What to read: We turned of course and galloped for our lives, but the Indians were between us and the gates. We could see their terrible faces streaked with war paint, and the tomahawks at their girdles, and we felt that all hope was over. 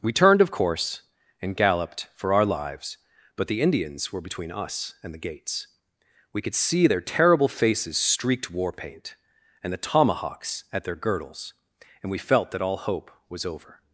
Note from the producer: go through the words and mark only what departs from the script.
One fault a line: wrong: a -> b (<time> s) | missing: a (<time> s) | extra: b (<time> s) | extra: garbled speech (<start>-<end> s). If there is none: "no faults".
missing: with (8.5 s)